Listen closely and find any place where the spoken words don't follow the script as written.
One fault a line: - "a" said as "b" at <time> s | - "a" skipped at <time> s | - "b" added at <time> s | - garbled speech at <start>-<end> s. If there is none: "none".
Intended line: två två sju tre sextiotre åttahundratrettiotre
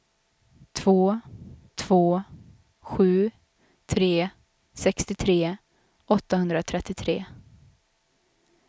none